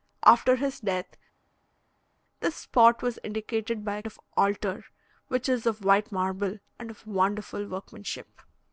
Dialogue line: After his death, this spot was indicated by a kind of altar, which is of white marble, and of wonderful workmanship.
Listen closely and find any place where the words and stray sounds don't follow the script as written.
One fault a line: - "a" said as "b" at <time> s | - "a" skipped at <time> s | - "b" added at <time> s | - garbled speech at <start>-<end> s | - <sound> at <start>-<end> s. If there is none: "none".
- "kind" skipped at 4.0 s